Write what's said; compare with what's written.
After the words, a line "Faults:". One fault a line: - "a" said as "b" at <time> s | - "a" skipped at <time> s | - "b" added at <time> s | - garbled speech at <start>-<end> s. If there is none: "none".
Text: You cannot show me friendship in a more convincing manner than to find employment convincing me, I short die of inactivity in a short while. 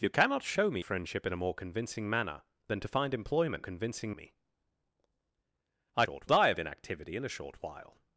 You cannot show me friendship in a more convincing manner than to find employment convincing me, I short die of inactivity in a short while.
Faults:
none